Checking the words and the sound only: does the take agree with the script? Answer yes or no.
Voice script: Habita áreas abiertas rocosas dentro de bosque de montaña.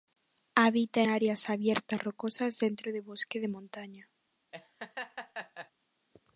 no